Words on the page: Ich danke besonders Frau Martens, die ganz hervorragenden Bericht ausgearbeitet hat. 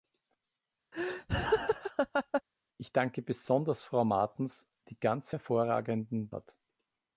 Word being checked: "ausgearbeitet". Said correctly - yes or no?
no